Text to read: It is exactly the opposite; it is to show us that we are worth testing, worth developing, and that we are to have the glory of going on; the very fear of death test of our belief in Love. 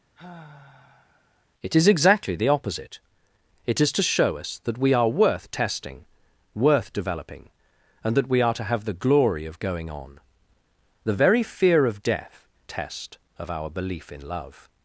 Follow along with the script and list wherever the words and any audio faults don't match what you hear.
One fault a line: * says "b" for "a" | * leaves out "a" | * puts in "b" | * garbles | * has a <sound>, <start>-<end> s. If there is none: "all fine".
* has a sigh, 0.1-1.5 s